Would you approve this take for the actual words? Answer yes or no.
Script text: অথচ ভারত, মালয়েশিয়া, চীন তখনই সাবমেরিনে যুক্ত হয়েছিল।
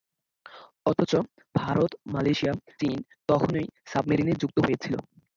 yes